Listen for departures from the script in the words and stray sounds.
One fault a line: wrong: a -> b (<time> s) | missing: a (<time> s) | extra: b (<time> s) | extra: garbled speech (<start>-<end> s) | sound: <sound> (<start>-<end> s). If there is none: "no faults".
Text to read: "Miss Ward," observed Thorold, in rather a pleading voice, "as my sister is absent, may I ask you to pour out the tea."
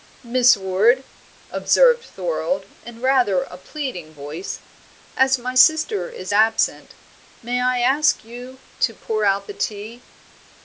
no faults